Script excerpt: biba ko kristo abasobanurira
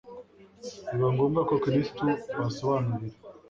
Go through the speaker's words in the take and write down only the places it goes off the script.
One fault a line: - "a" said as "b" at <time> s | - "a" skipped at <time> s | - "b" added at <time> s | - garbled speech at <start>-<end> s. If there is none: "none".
- "ngombwa" added at 1.1 s